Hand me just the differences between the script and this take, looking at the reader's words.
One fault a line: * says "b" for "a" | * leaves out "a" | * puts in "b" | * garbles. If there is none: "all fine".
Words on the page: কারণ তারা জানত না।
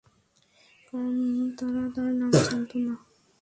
* puts in "তার নাম"